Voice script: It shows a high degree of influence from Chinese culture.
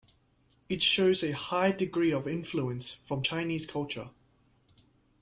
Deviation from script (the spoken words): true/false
false